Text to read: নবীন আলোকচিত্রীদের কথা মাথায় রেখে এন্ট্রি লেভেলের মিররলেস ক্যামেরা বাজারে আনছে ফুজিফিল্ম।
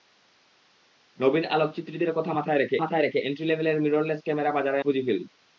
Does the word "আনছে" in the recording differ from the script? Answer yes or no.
yes